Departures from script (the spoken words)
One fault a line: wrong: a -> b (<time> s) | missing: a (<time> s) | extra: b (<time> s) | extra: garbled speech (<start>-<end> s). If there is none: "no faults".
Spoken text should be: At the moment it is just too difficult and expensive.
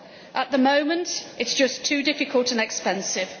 no faults